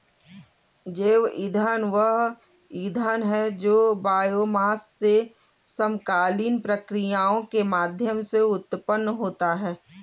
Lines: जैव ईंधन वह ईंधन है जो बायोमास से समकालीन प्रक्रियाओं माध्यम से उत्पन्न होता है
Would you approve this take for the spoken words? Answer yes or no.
no